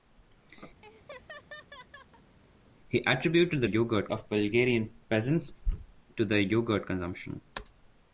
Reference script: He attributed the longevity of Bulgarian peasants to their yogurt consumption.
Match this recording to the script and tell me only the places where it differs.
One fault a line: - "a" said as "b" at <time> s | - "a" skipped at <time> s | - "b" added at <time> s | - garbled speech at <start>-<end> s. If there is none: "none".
- "longevity" said as "yogurt" at 3.6 s